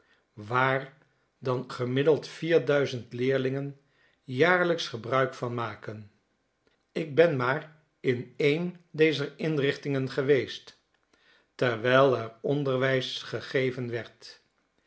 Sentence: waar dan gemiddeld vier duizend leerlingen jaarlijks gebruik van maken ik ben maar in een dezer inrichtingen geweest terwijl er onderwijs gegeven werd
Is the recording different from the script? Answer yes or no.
no